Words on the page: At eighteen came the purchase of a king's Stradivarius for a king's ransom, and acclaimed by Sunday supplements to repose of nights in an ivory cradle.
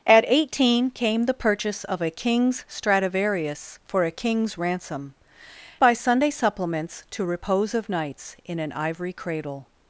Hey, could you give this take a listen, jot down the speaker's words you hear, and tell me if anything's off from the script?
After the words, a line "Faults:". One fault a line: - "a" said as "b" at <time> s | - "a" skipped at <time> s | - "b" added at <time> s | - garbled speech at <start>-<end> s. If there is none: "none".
At eighteen came the purchase of a king's Stradivarius for a king's ransom, by Sunday supplements to repose of nights in an ivory cradle.
Faults:
- "and acclaimed" skipped at 5.2 s